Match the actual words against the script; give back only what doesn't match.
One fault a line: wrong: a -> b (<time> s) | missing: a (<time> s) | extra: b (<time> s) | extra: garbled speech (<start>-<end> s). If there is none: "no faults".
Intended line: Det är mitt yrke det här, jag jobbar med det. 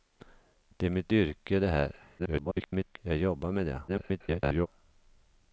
extra: garbled speech (2.2-3.0 s)
extra: garbled speech (3.9-4.7 s)